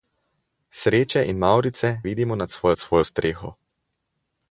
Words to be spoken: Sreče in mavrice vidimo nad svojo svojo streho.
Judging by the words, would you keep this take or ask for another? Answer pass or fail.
pass